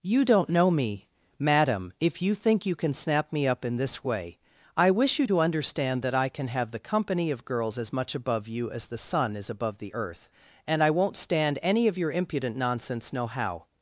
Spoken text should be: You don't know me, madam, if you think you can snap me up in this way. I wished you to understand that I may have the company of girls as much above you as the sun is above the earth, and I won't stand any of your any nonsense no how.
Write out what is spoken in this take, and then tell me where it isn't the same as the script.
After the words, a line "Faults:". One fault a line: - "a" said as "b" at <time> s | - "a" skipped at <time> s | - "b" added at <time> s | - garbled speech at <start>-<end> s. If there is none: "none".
You don't know me, madam, if you think you can snap me up in this way. I wish you to understand that I can have the company of girls as much above you as the sun is above the earth, and I won't stand any of your impudent nonsense no how.
Faults:
- "wished" said as "wish" at 4.9 s
- "may" said as "can" at 6.3 s
- "any" said as "impudent" at 12.1 s